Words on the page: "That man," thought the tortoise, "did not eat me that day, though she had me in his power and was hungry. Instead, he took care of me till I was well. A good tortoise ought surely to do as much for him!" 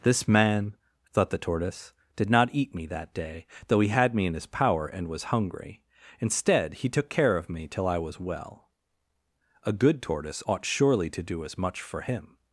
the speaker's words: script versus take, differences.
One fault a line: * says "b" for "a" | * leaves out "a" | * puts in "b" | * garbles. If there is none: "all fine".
* says "This" for "That"
* says "he" for "she"